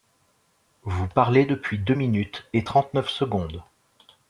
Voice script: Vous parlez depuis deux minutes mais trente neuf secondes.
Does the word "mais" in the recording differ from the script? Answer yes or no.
yes